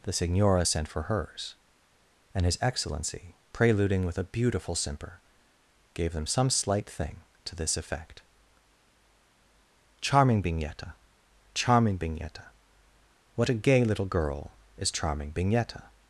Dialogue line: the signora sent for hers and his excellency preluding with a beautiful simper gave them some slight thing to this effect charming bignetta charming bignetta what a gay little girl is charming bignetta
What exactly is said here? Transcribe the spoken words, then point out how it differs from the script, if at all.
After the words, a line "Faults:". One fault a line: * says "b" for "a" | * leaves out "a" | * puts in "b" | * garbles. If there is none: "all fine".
the signora sent for hers and his excellency preluding with a beautiful simper gave them some slight thing to this effect charming bignetta charming bignetta what a gay little girl is charming bignetta
Faults:
all fine